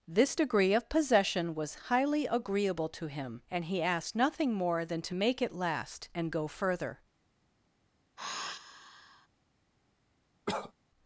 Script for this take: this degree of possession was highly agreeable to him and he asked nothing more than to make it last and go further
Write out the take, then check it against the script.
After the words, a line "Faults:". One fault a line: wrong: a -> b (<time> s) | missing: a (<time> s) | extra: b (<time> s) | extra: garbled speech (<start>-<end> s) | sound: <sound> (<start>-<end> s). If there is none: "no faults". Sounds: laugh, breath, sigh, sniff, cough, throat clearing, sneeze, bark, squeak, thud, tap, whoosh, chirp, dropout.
this degree of possession was highly agreeable to him and he asked nothing more than to make it last and go further
Faults:
sound: sigh (8.2-9.3 s)
sound: cough (10.5-10.7 s)